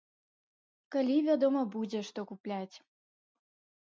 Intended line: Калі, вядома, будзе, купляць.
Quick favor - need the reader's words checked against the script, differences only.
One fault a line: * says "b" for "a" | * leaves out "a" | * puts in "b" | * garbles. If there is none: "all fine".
* puts in "што"